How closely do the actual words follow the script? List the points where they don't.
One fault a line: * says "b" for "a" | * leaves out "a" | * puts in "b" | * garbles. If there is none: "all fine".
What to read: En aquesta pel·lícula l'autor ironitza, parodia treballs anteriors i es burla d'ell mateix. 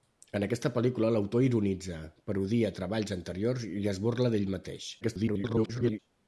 * garbles